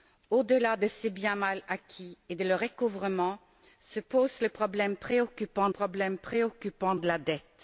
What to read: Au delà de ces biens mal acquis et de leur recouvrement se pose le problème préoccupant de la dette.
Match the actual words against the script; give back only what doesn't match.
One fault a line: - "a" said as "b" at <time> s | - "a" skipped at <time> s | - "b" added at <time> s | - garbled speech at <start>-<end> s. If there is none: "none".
- "problème préoccupant" added at 5.7 s